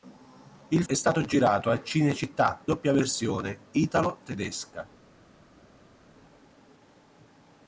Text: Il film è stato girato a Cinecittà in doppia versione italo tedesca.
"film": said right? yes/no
no